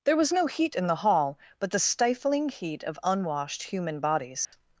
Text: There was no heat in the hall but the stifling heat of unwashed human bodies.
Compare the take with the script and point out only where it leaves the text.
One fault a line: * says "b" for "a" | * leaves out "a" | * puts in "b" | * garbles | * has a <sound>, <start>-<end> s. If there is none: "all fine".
* has a dropout, 4.5-4.5 s